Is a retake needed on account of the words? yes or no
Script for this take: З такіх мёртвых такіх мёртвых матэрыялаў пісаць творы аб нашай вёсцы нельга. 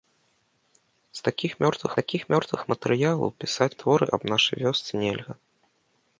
no